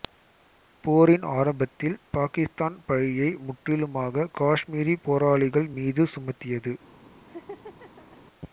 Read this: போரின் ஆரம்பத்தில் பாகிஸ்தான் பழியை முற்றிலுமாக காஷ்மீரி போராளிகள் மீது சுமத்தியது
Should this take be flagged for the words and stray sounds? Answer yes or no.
yes